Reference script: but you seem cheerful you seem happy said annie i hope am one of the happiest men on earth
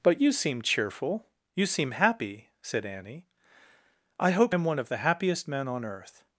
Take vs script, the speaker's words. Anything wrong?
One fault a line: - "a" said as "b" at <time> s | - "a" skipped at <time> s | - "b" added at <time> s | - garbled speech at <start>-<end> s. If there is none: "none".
none